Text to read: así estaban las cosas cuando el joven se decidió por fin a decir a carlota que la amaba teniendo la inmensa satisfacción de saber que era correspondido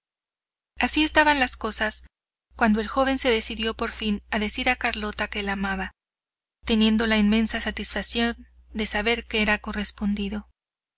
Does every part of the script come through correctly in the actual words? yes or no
yes